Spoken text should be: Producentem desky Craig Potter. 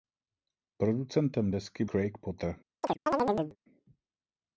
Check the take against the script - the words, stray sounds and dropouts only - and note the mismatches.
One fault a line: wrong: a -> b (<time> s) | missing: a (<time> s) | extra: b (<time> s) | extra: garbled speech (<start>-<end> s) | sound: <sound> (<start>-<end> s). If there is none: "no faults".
sound: chirp (2.8-3.6 s)